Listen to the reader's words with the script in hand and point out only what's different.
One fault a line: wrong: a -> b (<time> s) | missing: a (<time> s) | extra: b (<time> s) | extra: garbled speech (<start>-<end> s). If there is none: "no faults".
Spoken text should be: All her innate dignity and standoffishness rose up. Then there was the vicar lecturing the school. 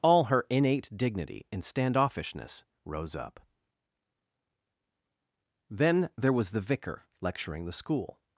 no faults